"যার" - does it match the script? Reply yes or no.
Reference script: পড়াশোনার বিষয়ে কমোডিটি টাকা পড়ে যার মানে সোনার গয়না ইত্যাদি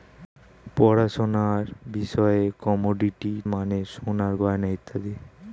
no